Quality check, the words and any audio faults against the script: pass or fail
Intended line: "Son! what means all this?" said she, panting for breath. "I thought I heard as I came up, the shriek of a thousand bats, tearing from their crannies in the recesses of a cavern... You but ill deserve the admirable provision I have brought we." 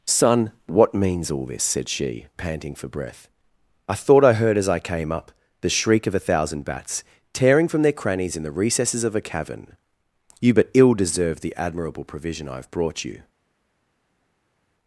fail